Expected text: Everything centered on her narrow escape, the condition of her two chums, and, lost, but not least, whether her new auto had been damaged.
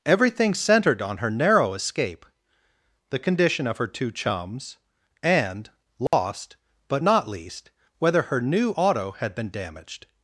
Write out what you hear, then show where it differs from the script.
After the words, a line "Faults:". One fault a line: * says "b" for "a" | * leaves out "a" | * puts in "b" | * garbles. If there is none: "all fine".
Everything centered on her narrow escape, the condition of her two chums, and, lost, but not least, whether her new auto had been damaged.
Faults:
all fine